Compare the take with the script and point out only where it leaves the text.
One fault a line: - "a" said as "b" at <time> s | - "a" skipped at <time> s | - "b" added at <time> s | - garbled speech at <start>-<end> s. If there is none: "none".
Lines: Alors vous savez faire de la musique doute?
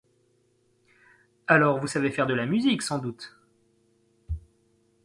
- "sans" added at 2.8 s